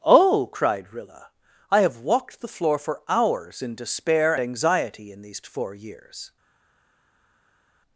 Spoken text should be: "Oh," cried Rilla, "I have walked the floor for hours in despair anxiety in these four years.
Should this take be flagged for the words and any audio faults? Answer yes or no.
no